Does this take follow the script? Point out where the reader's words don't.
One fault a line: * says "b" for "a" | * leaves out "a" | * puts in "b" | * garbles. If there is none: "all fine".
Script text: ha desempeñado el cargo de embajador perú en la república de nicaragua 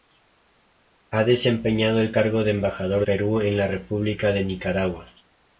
all fine